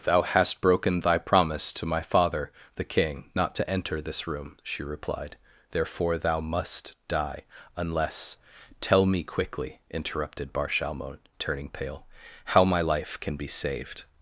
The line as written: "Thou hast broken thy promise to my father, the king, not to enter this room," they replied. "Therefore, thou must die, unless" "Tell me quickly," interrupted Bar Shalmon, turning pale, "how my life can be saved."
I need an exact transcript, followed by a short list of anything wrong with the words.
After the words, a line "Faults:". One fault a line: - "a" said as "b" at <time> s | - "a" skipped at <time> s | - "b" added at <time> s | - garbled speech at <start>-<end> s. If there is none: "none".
"Thou hast broken thy promise to my father, the king, not to enter this room," she replied. "Therefore, thou must die, unless" "Tell me quickly," interrupted Bar Shalmon, turning pale, "how my life can be saved."
Faults:
- "they" said as "she" at 4.6 s